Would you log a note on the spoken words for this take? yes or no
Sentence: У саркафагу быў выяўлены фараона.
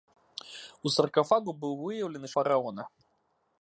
no